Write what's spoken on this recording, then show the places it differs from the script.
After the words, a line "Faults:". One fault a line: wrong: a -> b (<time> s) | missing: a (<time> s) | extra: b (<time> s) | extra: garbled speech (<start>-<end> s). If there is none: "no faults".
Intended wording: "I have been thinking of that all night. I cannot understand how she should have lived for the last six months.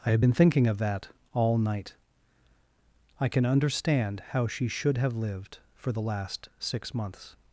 "I have been thinking of that all night. I can understand how she should have lived for the last six months.
Faults:
wrong: cannot -> can (3.3 s)